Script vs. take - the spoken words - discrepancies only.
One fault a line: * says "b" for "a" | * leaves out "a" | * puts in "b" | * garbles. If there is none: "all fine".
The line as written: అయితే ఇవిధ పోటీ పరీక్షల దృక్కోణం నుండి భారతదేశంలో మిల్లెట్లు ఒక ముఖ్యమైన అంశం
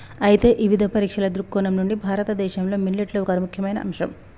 * leaves out "పోటీ"